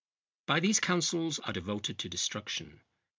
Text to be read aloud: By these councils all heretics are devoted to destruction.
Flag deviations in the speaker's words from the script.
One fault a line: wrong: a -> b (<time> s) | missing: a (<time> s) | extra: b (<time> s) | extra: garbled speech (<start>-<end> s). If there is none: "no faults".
missing: all heretics (1.4 s)